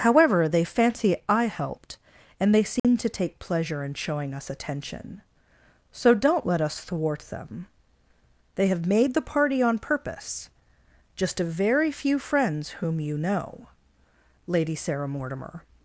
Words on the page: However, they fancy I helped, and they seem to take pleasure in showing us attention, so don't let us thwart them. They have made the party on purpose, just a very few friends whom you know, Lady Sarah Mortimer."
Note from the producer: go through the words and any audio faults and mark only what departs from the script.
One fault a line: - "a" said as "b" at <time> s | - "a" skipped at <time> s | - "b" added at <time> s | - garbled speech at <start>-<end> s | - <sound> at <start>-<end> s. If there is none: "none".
- dropout at 2.8-2.8 s